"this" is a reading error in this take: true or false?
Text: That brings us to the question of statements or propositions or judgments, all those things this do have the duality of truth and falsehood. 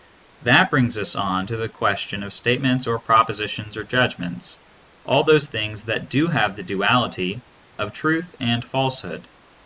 true